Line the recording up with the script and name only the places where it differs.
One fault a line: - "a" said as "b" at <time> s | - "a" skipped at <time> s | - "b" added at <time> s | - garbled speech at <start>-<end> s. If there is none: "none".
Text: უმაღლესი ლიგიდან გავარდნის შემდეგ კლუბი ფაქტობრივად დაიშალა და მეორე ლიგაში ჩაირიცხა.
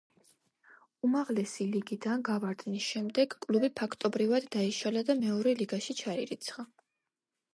none